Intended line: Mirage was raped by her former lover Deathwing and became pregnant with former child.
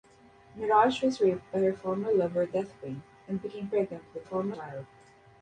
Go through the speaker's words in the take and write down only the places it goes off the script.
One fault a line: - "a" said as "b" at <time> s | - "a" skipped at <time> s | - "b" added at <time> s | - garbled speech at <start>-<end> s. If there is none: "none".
none